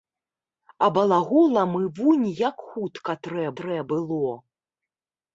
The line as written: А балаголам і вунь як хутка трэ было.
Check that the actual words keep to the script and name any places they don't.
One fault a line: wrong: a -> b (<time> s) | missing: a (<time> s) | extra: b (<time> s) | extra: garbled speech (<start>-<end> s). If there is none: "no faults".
extra: трэ (3.6 s)